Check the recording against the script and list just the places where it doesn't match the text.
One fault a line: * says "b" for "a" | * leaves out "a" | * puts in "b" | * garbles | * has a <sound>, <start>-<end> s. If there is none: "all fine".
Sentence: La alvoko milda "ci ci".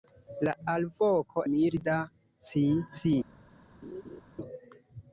* has a laugh, 3.8-4.2 s